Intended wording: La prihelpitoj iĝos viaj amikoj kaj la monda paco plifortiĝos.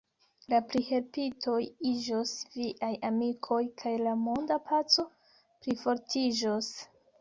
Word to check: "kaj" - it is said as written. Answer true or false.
true